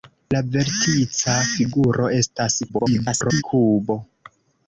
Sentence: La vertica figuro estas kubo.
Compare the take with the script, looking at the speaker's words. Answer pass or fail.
fail